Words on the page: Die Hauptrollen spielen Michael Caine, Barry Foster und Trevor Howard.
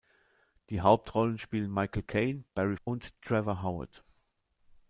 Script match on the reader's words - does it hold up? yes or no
no